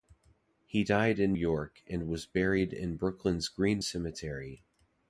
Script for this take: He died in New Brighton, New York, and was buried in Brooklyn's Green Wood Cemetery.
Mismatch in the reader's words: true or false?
true